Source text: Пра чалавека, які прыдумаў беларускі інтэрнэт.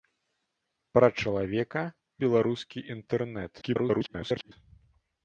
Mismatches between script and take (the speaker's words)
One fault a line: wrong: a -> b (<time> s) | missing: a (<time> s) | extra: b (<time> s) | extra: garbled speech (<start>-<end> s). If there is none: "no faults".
missing: які прыдумаў (1.8 s)
extra: garbled speech (3.6-4.5 s)